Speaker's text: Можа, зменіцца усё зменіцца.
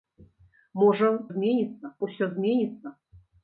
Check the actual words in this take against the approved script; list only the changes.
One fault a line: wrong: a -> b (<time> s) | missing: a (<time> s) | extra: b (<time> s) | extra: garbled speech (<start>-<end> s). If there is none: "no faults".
no faults